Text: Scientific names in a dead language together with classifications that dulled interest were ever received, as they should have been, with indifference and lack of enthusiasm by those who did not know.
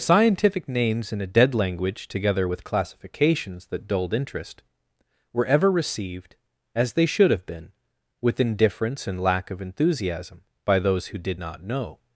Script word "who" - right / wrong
right